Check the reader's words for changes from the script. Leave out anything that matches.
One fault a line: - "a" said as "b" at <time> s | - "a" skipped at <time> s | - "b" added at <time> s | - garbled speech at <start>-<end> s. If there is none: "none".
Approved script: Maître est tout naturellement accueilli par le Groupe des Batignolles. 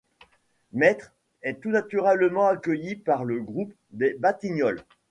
none